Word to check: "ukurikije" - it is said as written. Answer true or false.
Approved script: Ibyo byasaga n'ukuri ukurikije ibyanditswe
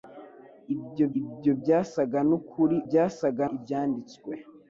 false